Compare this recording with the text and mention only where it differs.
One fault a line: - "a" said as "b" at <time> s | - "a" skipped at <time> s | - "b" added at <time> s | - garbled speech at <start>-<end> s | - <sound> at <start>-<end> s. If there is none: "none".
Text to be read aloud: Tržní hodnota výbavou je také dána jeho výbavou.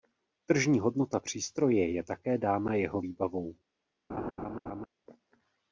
- "výbavou" said as "přístroje" at 1.2 s
- laugh at 4.1-4.9 s